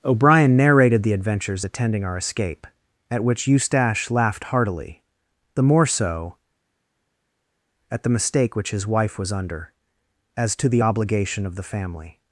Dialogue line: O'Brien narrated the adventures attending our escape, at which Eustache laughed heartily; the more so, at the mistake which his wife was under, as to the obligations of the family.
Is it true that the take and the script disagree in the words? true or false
true